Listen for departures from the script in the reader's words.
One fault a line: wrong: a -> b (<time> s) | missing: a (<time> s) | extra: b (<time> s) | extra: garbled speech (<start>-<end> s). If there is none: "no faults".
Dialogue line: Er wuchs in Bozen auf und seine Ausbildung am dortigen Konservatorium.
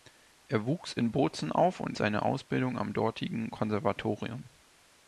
no faults